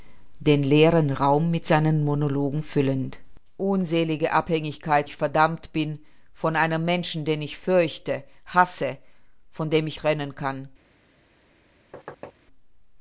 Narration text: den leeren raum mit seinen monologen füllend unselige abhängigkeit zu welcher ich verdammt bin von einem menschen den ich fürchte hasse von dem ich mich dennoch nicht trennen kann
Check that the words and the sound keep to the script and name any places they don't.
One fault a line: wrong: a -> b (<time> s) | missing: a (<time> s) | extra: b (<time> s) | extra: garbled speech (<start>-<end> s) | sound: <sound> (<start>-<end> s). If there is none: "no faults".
missing: zu welcher (5.1 s)
missing: mich dennoch nicht (10.0 s)
sound: thud (11.9-12.3 s)